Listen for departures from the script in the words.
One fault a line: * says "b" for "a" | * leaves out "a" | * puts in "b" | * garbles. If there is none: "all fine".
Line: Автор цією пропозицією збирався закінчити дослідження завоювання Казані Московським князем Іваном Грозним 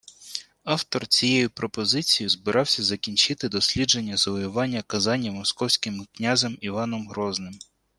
all fine